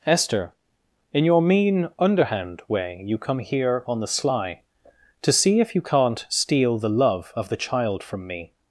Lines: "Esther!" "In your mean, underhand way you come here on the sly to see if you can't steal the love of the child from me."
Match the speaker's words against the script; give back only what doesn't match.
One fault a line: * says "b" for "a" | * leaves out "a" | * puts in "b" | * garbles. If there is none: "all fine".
all fine